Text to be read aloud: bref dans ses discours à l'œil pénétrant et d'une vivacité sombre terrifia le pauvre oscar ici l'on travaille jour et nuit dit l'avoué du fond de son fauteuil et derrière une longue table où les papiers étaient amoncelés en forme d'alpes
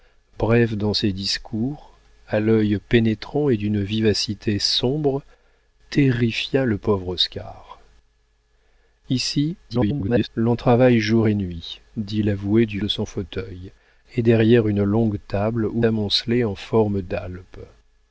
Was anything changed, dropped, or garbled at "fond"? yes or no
yes